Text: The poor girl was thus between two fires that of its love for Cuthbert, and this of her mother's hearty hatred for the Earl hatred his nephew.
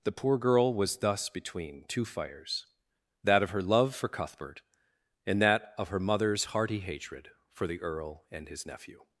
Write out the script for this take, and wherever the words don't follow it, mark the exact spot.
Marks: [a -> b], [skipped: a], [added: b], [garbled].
The poor girl was thus between two fires that of [its -> her] love for Cuthbert, and [this -> that] of her mother's hearty hatred for the Earl [hatred -> and] his nephew.